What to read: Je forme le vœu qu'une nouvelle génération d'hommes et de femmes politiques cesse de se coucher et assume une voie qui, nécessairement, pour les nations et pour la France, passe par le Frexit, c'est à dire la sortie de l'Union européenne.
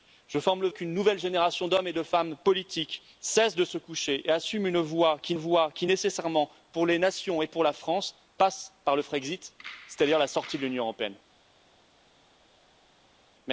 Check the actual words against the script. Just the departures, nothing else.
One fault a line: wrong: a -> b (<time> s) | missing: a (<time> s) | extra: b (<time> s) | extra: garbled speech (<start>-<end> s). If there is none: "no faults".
missing: vœu (0.7 s)
extra: voie qui (5.3 s)